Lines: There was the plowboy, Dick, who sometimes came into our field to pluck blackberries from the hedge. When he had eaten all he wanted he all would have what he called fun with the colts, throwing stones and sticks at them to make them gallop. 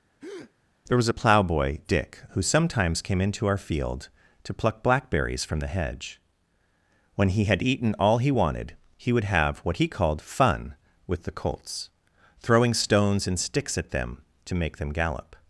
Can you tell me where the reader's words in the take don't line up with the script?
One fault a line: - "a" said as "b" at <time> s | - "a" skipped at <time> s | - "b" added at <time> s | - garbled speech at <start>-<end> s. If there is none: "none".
- "the" said as "a" at 1.1 s
- "all" skipped at 9.1 s